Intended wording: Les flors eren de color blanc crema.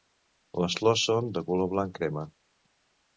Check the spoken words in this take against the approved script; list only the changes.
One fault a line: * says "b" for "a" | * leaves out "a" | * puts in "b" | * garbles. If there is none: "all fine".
* says "són" for "eren"